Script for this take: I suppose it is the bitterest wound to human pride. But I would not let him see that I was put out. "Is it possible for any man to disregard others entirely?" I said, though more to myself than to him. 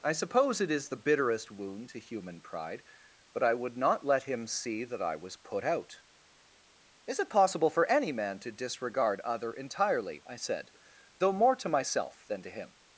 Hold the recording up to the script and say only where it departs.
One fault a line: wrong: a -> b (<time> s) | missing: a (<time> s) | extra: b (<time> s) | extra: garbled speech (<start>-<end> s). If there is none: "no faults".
wrong: others -> other (9.2 s)